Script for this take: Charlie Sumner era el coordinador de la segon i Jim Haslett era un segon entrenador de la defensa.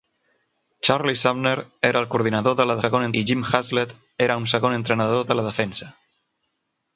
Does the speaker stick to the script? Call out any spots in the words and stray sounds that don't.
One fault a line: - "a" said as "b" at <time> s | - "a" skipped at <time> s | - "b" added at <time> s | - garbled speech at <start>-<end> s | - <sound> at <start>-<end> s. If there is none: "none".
none